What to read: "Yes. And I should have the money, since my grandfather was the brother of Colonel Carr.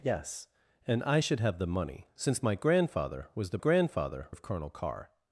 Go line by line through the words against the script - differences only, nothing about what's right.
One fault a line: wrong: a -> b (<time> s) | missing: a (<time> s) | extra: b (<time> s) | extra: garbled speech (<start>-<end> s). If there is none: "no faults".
wrong: brother -> grandfather (3.6 s)